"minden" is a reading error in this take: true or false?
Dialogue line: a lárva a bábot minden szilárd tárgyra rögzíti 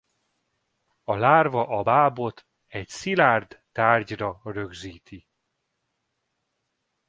true